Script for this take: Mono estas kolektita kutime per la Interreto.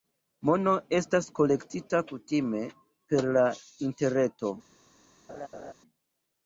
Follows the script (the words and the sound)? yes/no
no